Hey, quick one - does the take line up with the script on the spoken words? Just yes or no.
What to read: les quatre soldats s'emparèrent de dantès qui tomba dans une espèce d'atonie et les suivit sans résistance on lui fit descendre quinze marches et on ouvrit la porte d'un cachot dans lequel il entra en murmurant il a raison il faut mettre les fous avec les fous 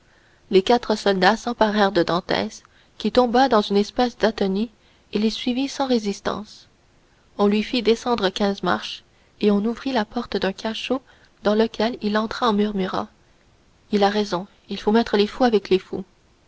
yes